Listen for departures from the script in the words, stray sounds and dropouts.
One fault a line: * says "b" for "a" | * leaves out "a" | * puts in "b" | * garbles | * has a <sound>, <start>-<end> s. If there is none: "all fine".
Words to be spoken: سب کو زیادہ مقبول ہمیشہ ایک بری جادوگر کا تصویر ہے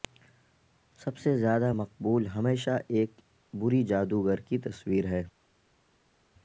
* says "سے" for "کو"
* says "کی" for "کا"